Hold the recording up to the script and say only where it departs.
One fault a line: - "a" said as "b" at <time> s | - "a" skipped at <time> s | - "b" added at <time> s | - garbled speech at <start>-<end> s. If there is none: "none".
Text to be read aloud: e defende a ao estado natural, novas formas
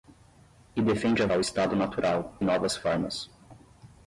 none